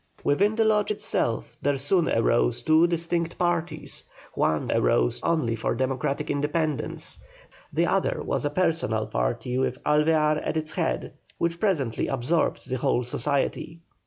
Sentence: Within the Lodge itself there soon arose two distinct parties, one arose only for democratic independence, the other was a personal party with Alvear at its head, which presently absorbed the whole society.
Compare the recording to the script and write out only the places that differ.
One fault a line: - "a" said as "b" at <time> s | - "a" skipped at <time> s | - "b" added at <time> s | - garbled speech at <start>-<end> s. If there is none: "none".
none